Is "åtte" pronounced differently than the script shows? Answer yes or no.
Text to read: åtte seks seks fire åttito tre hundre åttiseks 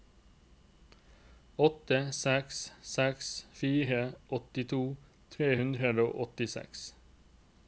no